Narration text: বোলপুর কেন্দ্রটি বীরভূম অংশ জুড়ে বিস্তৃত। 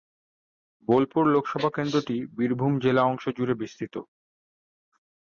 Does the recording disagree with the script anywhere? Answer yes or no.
yes